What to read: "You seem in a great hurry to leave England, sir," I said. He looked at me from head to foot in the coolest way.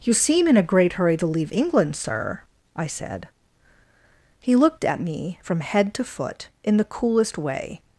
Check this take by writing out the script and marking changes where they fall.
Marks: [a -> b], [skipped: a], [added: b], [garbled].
"You seem in a great hurry to leave England, sir," I said. He looked at me from head to foot in the coolest way.